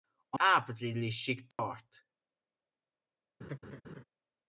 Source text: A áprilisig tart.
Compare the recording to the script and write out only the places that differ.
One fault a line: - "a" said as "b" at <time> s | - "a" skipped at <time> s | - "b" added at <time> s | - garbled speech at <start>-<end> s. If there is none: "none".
none